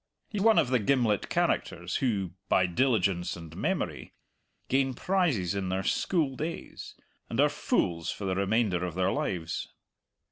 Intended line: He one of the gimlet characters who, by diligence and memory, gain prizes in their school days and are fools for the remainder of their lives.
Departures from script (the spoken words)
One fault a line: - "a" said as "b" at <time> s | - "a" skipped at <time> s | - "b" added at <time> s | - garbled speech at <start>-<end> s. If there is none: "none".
none